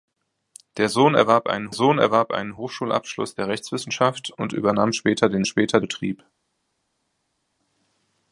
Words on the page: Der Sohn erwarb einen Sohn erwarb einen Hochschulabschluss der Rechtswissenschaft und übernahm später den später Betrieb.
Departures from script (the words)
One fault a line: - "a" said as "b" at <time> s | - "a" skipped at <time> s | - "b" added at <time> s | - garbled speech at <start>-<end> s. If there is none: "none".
none